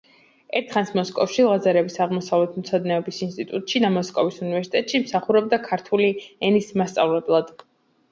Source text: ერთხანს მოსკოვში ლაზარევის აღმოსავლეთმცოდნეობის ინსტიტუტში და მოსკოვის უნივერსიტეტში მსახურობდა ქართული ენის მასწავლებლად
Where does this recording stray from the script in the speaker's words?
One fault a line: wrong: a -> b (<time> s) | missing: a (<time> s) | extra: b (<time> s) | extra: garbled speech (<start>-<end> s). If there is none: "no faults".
no faults